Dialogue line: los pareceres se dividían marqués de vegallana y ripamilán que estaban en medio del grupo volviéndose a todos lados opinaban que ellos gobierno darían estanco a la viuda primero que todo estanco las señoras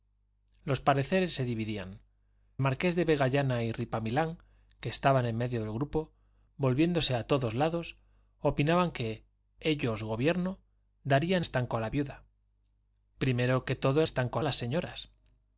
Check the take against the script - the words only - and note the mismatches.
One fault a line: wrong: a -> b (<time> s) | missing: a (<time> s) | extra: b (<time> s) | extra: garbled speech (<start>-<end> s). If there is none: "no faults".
no faults